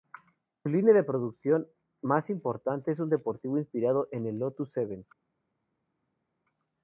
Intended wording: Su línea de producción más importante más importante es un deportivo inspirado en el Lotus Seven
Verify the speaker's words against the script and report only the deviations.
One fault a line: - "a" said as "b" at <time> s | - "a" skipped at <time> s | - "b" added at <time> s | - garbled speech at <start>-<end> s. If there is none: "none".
- "más importante" skipped at 2.9 s